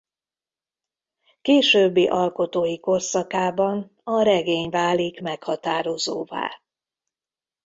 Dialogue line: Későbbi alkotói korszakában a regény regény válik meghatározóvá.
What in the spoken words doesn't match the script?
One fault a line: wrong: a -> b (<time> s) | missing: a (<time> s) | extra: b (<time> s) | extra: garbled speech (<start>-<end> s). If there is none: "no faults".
missing: regény (4.7 s)